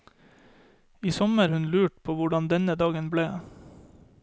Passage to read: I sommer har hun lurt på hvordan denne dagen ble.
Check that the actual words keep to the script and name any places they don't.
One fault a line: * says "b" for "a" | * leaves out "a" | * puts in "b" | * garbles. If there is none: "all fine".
* leaves out "har"